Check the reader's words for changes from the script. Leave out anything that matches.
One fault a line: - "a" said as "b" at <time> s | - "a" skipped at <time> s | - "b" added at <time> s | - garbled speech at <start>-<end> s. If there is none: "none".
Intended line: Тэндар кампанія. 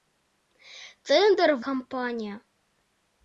none